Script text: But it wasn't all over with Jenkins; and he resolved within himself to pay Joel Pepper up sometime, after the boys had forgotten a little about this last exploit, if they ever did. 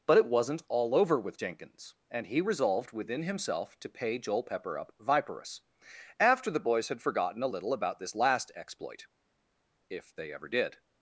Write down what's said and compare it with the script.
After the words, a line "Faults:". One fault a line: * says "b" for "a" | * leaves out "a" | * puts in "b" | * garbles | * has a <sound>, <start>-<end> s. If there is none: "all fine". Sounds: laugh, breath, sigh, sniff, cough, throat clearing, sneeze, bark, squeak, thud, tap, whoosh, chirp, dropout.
But it wasn't all over with Jenkins; and he resolved within himself to pay Joel Pepper up viperous, after the boys had forgotten a little about this last exploit, if they ever did.
Faults:
* says "viperous" for "sometime"